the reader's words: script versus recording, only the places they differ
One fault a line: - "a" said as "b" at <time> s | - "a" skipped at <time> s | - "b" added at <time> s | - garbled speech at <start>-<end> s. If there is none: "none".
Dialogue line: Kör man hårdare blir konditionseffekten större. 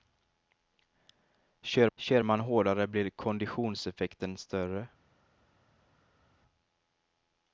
- "kör" added at 2.0 s